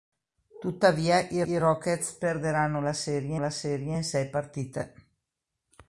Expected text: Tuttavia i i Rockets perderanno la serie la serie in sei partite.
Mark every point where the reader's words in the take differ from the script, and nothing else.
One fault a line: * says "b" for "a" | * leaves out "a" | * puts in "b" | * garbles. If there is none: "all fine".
all fine